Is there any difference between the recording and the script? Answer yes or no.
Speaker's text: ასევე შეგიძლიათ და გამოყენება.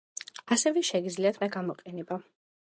no